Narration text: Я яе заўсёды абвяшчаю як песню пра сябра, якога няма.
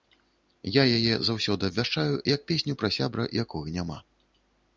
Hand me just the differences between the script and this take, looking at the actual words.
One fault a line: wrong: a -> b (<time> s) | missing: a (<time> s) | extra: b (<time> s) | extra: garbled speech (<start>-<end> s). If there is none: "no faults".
no faults